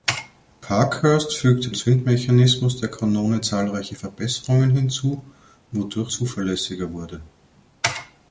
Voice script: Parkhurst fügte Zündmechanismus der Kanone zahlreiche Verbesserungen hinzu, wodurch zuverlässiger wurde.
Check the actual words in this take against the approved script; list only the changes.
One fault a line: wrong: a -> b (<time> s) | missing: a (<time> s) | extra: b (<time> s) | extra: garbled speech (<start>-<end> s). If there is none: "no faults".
no faults